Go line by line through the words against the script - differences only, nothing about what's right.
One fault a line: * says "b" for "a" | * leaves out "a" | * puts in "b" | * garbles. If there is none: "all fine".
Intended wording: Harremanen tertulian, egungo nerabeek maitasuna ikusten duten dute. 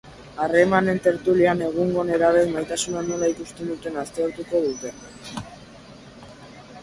* puts in "nola"
* puts in "aztertuko"